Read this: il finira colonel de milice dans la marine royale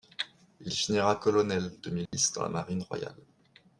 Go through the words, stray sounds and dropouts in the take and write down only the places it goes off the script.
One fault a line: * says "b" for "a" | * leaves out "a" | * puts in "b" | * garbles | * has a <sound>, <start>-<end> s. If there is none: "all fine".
* has a dropout, 2.1-2.1 s